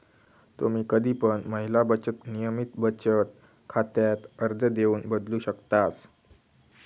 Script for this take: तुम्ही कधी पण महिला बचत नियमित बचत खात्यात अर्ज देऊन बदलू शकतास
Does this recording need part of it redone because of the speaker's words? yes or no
no